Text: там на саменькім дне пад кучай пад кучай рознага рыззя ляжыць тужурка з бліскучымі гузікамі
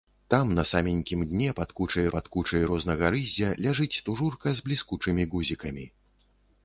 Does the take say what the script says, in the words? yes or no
yes